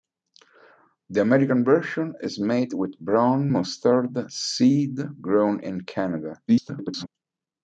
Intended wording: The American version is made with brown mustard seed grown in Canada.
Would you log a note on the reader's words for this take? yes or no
yes